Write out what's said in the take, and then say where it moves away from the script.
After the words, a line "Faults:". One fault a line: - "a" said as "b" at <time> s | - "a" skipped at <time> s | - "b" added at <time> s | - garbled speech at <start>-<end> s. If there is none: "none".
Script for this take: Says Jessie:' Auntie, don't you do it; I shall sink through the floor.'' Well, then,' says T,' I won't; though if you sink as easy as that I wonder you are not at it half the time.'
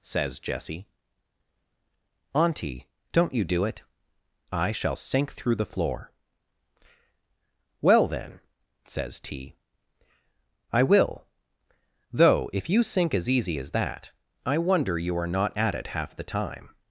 Says Jessie:' Auntie, don't you do it; I shall sink through the floor.'' Well, then,' says T,' I will; though if you sink as easy as that I wonder you are not at it half the time.'
Faults:
- "won't" said as "will" at 10.8 s